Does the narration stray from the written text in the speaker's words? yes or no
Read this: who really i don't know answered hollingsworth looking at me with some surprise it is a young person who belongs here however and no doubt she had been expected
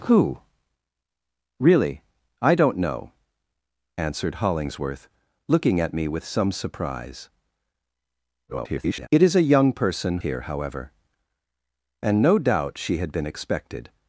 yes